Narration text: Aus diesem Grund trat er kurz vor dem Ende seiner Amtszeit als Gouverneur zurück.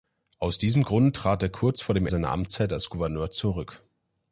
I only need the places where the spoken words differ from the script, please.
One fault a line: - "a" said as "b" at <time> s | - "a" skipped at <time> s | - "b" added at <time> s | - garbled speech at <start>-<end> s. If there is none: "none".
- "Ende" skipped at 2.1 s